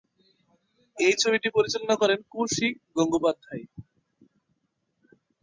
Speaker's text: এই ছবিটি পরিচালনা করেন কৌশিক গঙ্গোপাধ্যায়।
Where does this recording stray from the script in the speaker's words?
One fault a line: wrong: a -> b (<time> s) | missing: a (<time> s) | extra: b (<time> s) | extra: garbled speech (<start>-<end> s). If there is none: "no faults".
no faults